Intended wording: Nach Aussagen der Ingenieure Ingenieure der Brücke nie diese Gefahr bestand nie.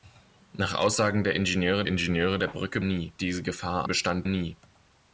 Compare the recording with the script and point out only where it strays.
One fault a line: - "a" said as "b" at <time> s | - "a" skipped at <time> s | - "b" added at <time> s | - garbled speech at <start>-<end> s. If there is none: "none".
none